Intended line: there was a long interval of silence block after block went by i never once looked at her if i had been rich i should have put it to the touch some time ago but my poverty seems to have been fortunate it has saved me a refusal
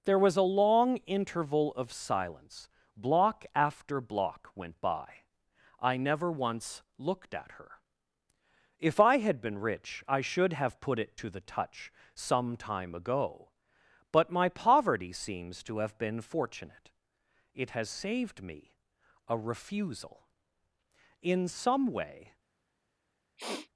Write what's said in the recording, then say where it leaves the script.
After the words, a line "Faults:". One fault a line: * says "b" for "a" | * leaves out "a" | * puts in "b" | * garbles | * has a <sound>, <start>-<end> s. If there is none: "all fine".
there was a long interval of silence block after block went by i never once looked at her if i had been rich i should have put it to the touch some time ago but my poverty seems to have been fortunate it has saved me a refusal in some way
Faults:
* puts in "in some way"
* has a sniff, 23.4-23.7 s